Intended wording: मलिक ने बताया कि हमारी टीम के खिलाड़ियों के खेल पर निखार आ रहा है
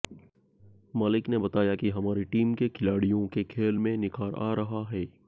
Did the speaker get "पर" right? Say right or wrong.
wrong